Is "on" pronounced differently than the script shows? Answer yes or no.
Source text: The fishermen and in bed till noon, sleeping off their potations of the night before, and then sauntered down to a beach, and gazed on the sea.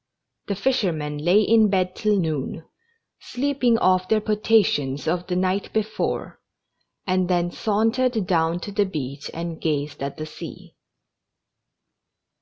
yes